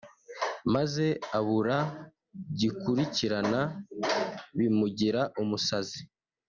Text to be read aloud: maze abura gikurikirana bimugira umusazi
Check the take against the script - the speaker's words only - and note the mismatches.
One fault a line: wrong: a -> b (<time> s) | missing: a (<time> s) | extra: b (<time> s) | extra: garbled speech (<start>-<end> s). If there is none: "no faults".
no faults